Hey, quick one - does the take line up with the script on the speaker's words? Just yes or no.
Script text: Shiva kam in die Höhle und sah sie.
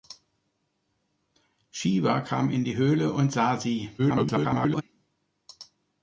no